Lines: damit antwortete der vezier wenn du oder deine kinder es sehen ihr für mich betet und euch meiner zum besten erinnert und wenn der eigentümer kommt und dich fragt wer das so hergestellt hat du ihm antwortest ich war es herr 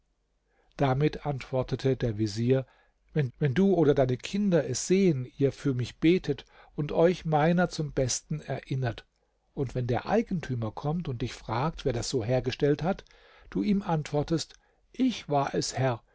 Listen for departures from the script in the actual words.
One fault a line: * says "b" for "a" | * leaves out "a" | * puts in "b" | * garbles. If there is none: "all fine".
* puts in "wenn"